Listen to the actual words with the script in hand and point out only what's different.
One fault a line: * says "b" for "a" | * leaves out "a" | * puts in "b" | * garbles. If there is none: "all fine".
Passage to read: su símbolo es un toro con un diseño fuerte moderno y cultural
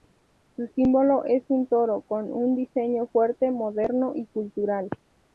all fine